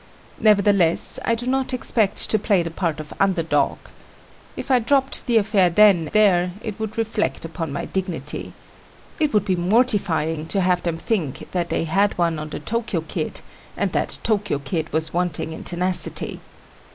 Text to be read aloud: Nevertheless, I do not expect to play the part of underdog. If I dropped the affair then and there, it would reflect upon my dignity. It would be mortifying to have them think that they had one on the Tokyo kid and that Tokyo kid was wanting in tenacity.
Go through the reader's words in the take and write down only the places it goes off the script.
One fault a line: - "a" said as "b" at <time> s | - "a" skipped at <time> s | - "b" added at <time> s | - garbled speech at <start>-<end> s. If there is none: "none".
- "and" skipped at 6.1 s